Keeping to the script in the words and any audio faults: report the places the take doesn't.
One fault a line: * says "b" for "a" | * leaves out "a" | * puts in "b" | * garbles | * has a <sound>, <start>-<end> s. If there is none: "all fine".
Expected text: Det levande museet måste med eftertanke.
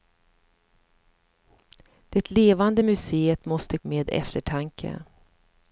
all fine